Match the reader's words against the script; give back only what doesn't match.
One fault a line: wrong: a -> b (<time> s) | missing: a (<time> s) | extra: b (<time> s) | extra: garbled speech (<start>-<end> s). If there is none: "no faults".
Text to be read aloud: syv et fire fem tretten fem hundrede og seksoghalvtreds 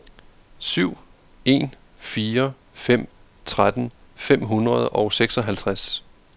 wrong: et -> en (1.5 s)